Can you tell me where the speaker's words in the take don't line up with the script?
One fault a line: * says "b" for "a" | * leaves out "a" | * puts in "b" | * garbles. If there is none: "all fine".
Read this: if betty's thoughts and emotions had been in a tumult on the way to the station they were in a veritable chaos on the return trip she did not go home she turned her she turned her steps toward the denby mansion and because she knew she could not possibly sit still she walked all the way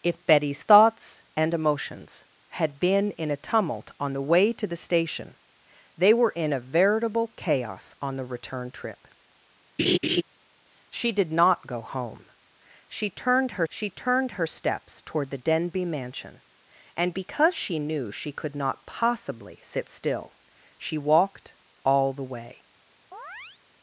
all fine